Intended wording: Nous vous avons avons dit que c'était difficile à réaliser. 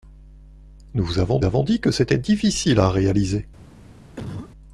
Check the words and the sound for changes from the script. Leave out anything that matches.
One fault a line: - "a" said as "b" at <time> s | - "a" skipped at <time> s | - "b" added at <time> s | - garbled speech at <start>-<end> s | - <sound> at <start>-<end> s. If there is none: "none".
- cough at 4.2-4.5 s